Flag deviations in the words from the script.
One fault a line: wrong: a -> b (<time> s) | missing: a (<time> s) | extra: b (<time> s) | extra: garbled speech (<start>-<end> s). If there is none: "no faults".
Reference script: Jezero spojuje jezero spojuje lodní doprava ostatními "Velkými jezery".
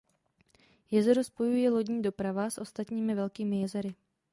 missing: jezero spojuje (1.7 s)
extra: s (2.5 s)